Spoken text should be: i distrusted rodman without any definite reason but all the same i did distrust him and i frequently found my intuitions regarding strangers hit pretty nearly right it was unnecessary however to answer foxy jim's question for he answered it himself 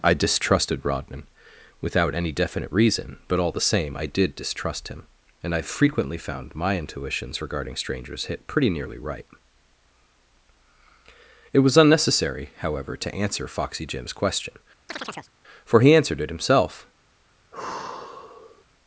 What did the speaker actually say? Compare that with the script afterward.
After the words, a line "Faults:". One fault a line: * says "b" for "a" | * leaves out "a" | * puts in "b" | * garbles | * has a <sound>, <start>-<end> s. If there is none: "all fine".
i distrusted rodman without any definite reason but all the same i did distrust him and i frequently found my intuitions regarding strangers hit pretty nearly right it was unnecessary however to answer foxy jim's question for he answered it himself
Faults:
* has a chirp, 14.9-15.3 s
* has a sigh, 17.5-18.6 s